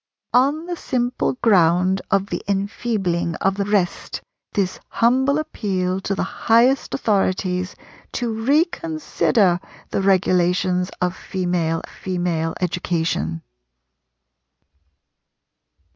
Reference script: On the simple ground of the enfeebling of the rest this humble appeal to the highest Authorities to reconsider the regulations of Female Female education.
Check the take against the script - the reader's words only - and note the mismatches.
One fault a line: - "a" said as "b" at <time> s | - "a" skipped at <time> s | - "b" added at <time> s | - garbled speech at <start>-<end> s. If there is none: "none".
none